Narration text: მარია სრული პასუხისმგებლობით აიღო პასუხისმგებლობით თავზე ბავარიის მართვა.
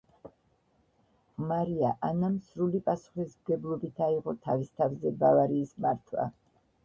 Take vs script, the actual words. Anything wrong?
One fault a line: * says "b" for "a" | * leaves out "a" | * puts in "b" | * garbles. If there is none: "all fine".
* puts in "ანამ"
* says "თავის" for "პასუხისმგებლობით"